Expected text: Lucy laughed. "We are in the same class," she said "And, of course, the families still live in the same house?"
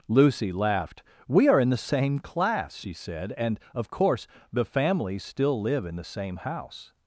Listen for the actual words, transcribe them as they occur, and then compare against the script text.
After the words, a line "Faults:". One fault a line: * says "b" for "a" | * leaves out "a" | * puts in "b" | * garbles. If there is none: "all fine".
Lucy laughed. "We are in the same class," she said "And, of course, the families still live in the same house?"
Faults:
all fine